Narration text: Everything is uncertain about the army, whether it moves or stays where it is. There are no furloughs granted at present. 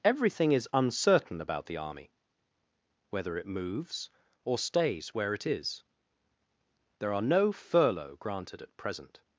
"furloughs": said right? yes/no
no